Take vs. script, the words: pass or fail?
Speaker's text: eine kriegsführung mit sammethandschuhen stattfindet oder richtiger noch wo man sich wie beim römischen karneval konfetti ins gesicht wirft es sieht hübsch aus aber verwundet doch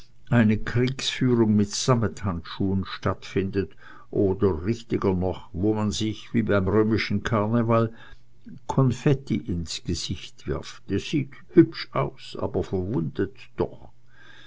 pass